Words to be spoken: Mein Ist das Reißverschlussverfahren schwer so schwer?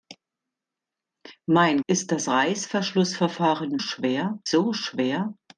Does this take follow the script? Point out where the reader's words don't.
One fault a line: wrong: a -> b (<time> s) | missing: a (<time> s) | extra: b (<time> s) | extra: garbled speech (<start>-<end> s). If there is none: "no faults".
no faults